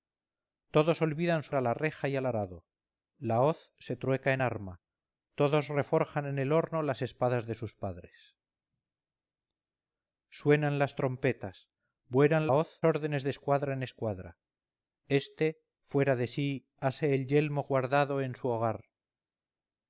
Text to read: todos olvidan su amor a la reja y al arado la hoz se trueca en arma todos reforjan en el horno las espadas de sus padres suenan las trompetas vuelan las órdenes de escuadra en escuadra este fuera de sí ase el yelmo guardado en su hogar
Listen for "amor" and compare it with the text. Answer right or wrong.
wrong